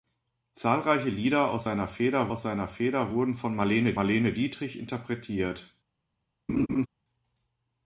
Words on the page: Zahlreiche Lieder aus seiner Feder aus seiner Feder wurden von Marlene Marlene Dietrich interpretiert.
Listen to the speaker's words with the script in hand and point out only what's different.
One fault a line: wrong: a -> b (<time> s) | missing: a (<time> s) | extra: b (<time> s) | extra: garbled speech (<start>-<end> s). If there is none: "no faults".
no faults